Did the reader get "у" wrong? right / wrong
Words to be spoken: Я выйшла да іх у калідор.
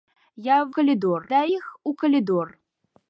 right